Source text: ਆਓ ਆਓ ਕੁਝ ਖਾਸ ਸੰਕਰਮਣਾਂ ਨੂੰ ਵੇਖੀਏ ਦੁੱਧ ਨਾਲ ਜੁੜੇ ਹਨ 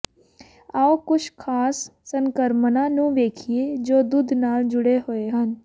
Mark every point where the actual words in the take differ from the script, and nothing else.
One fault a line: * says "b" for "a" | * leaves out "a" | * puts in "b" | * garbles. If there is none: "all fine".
* leaves out "ਆਓ"
* puts in "ਜੋ"
* puts in "ਹੋਏ"